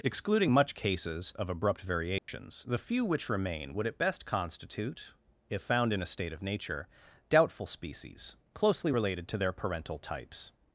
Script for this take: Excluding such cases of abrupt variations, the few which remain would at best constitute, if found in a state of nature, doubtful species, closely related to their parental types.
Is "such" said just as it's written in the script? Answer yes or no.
no